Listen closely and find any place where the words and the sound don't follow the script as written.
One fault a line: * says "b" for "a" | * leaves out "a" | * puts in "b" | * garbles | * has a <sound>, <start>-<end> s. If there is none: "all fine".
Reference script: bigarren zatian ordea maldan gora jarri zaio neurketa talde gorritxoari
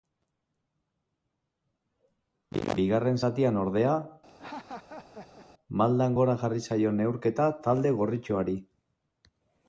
* has a laugh, 4.3-5.5 s